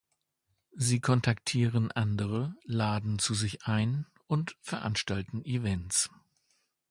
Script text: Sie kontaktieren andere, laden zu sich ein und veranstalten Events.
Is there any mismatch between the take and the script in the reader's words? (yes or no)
no